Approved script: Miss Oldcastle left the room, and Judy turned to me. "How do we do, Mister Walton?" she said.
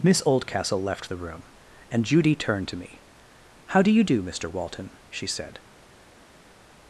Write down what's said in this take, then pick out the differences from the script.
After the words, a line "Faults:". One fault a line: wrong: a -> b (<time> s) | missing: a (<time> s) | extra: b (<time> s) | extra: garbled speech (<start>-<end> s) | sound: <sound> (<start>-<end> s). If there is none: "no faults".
Miss Oldcastle left the room, and Judy turned to me. "How do you do, Mister Walton?" she said.
Faults:
wrong: we -> you (3.9 s)